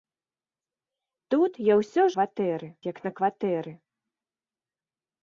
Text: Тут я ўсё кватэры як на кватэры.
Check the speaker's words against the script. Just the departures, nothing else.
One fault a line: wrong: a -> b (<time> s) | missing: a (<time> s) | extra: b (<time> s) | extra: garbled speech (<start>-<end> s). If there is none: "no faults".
no faults